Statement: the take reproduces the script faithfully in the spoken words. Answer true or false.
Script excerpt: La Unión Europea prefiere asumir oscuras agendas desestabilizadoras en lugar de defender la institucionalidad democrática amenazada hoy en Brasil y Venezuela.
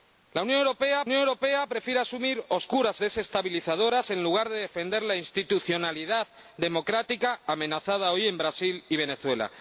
false